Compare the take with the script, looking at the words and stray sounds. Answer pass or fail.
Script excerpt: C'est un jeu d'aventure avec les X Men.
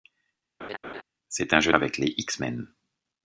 fail